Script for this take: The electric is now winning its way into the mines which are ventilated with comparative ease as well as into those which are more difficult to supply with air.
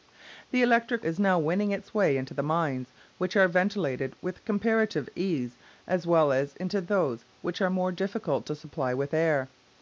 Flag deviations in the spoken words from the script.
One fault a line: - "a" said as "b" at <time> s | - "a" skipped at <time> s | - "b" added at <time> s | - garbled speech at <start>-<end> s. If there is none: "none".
none